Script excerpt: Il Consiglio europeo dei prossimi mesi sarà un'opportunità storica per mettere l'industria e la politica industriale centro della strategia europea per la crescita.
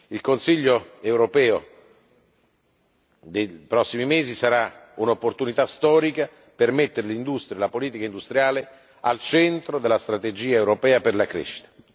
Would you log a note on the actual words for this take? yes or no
yes